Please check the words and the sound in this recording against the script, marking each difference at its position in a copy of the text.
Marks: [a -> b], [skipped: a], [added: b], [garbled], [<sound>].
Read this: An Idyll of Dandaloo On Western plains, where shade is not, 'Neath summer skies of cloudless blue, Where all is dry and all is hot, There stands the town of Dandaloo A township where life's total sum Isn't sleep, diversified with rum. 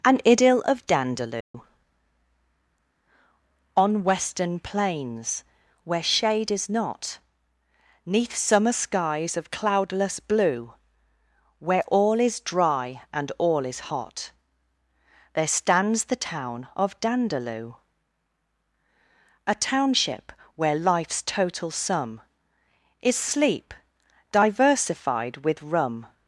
An Idyll of Dandaloo [dropout] On Western plains, where shade is not, 'Neath summer skies of cloudless blue, Where all is dry and all is hot, There stands the town of Dandaloo A township where life's total sum [Isn't -> Is] sleep, diversified with rum.